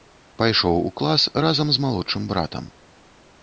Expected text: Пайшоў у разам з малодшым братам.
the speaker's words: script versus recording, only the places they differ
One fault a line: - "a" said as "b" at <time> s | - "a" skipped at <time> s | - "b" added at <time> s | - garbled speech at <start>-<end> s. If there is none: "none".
- "клас" added at 1.0 s